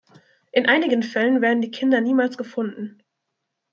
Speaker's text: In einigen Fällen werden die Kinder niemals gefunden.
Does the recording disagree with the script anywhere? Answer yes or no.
no